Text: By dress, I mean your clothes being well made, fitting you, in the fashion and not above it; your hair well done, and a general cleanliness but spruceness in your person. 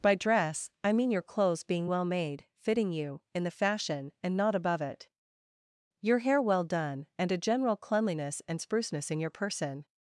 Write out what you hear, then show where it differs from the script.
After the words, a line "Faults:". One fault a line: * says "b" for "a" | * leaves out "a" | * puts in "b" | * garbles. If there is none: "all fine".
By dress, I mean your clothes being well made, fitting you, in the fashion and not above it; your hair well done, and a general cleanliness and spruceness in your person.
Faults:
* says "and" for "but"